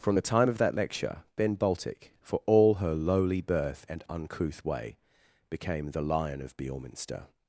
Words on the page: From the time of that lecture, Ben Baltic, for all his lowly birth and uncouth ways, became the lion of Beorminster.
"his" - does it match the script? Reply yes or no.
no